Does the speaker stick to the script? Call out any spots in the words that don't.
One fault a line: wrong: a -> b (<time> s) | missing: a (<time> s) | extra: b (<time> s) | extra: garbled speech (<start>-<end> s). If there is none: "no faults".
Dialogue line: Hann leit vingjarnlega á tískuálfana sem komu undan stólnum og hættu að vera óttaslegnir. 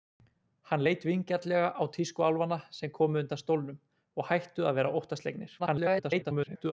extra: garbled speech (5.6-6.7 s)